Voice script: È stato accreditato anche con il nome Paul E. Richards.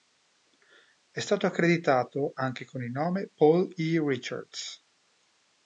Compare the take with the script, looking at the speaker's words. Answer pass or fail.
pass